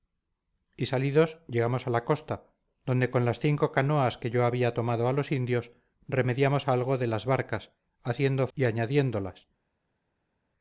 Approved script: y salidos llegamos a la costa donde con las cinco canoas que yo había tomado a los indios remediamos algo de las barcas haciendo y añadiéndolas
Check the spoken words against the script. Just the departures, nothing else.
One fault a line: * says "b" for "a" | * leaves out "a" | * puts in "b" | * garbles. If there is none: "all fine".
all fine